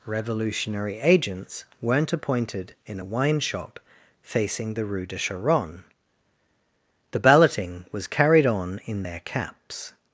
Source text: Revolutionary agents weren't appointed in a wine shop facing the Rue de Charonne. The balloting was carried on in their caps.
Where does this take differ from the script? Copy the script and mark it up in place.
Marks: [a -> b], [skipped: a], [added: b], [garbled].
Revolutionary agents weren't appointed in a wine shop facing the Rue de Charonne. The balloting was carried on in their caps.